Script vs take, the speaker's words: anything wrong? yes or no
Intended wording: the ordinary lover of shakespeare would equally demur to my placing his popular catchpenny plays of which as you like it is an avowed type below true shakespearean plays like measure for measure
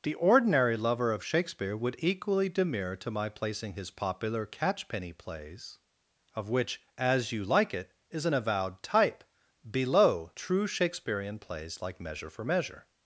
no